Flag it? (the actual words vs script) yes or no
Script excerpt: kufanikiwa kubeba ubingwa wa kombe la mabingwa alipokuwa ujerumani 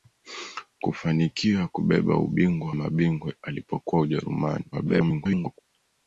yes